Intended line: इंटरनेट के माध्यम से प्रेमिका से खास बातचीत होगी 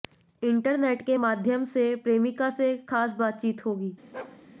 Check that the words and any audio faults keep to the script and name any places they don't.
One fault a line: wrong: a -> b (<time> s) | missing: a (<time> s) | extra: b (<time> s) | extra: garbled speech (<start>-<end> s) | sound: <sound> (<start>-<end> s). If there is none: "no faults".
sound: bark (4.1-4.4 s)